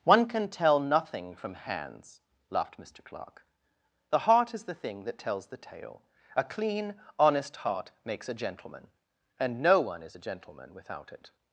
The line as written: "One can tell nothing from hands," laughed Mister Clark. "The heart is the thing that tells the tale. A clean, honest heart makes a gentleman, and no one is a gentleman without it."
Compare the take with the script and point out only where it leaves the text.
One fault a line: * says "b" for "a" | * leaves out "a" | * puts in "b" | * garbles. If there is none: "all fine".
all fine